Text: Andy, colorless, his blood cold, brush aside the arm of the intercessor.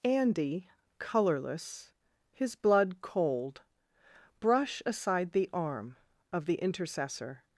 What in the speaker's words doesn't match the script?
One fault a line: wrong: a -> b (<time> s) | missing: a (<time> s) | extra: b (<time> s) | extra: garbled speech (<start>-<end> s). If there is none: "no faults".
no faults